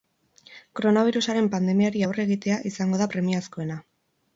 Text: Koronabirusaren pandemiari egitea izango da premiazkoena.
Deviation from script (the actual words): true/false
true